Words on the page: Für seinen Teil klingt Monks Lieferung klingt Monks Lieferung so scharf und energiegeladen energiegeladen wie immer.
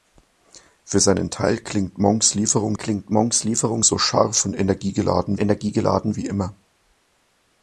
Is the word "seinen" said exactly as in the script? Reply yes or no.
yes